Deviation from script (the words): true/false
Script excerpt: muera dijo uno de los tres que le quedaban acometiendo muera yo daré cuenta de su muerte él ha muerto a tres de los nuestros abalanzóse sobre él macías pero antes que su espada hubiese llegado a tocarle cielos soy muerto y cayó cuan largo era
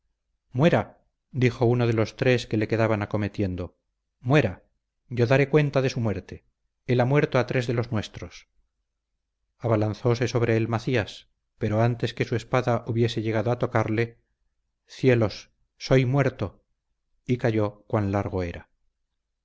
false